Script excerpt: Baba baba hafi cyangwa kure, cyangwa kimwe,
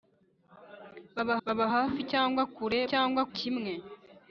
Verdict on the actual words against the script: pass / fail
pass